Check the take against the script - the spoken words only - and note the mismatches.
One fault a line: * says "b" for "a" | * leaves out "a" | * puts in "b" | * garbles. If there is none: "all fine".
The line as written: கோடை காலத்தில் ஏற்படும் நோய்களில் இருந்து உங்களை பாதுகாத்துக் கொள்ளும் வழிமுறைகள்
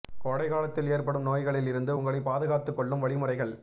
all fine